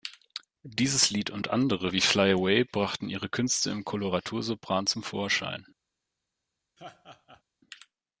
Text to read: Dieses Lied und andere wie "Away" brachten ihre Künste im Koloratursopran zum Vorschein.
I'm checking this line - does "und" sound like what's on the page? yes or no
yes